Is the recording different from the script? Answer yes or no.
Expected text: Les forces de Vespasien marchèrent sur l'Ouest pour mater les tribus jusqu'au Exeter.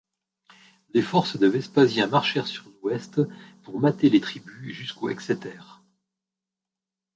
no